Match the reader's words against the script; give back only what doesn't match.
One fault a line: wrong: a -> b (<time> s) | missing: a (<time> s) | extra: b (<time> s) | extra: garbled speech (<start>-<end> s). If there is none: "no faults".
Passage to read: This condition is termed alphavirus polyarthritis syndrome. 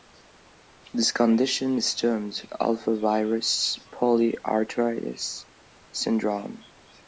no faults